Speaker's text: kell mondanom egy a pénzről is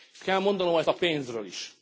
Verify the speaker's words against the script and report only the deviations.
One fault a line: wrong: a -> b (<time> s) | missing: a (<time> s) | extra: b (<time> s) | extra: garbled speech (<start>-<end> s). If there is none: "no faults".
no faults